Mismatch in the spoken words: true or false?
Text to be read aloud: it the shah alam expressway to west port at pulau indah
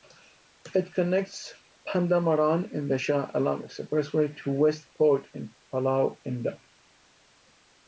true